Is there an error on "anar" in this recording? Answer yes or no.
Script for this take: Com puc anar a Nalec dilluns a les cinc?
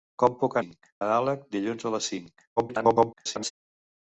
yes